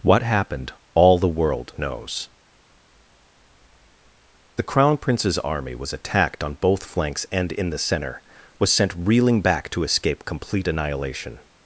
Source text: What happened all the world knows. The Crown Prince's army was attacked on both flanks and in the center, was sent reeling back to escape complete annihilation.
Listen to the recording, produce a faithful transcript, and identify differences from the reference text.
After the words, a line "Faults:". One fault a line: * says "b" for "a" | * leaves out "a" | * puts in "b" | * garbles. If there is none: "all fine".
What happened all the world knows. The Crown Prince's army was attacked on both flanks and in the center, was sent reeling back to escape complete annihilation.
Faults:
all fine